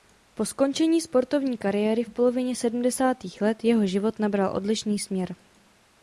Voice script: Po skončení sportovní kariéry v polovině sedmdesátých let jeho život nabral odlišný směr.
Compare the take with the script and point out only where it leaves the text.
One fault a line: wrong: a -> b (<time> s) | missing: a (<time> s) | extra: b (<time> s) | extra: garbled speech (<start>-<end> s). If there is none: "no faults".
no faults